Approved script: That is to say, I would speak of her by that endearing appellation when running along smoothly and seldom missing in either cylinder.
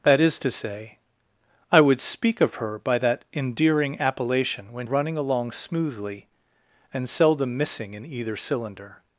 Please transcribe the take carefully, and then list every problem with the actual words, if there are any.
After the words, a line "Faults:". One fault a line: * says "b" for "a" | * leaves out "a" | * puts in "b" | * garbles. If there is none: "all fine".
That is to say, I would speak of her by that endearing appellation when running along smoothly and seldom missing in either cylinder.
Faults:
all fine